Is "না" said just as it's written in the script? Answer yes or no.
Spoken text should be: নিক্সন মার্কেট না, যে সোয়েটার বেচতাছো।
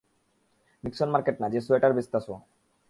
yes